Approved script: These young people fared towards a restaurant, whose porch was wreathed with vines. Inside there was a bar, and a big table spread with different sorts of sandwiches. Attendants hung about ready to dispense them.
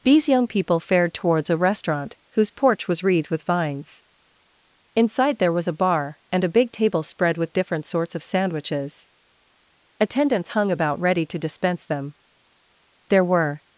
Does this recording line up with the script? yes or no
no